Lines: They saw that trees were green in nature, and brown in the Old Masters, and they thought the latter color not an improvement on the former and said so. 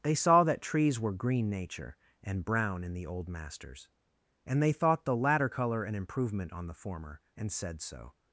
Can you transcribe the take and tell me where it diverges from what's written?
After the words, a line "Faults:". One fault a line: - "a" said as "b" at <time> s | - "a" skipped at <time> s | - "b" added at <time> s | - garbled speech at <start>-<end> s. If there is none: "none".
They saw that trees were green nature, and brown in the Old Masters, and they thought the latter color an improvement on the former and said so.
Faults:
- "in" skipped at 1.5 s
- "not" skipped at 5.8 s